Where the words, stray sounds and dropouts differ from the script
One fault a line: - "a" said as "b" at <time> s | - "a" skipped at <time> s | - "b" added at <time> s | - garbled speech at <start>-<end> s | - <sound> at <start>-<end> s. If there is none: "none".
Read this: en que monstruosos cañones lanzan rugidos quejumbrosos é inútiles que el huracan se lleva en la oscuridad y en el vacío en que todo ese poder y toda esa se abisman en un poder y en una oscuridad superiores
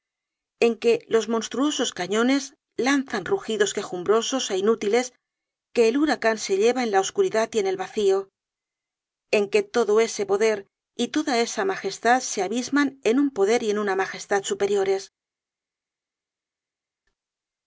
- "los" added at 1.1 s
- "magestad" added at 11.7 s
- "oscuridad" said as "magestad" at 14.0 s